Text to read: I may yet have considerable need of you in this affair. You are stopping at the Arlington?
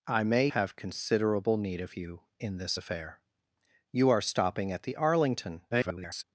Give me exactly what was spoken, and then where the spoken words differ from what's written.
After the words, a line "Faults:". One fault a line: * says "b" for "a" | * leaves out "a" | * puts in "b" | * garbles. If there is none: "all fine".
I may have considerable need of you in this affair. You are stopping at the Arlington? [garbled]
Faults:
* leaves out "yet"
* garbles